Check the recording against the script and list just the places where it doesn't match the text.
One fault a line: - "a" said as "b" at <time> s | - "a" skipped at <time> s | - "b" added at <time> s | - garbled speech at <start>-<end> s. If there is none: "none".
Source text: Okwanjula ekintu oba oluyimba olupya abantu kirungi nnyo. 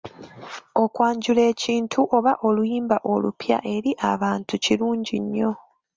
- "eri" added at 3.8 s